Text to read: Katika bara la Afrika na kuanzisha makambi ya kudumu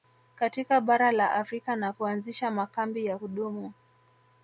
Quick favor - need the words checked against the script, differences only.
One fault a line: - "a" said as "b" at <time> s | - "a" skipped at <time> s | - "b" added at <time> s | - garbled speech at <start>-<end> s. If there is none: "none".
none